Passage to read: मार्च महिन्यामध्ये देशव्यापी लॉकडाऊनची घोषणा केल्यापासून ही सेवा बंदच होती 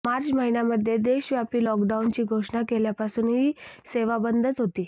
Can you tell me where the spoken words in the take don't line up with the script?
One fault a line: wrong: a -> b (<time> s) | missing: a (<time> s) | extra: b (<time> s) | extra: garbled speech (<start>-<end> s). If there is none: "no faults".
no faults